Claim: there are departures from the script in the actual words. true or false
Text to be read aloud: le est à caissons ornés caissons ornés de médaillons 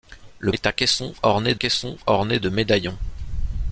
false